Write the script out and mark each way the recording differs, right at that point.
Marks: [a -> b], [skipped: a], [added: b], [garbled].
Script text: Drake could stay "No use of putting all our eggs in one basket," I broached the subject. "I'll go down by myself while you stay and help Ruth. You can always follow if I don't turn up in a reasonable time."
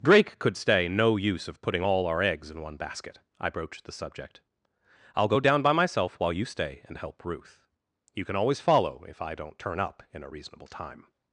Drake could stay "No use of putting all our eggs in one basket," I broached the subject. "I'll go down by myself while you stay and help Ruth. You can always follow if I don't turn up in a reasonable time."